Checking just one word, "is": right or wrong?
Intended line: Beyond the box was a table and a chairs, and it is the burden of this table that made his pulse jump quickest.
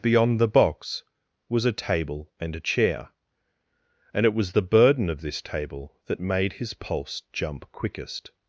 wrong